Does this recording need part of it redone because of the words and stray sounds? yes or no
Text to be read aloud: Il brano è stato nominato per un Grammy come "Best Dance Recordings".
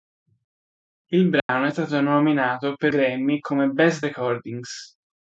yes